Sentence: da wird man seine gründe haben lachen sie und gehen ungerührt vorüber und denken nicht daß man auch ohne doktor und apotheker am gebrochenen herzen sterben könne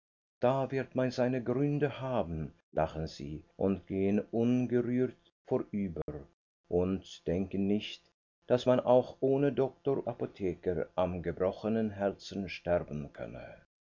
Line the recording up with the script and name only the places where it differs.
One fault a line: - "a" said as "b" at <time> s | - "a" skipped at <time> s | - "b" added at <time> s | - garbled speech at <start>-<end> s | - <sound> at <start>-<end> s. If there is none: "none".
- dropout at 6.0-6.1 s
- "und" skipped at 10.1 s